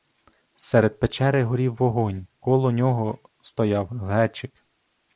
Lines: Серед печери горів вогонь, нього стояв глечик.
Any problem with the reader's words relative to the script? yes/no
yes